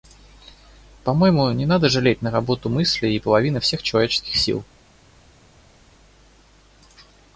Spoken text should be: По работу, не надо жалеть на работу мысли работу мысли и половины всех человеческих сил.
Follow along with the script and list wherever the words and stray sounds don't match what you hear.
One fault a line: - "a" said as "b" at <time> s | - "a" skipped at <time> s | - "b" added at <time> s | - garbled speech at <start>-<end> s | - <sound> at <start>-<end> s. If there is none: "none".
- "работу" said as "моему" at 1.1 s
- "работу мысли" skipped at 3.1 s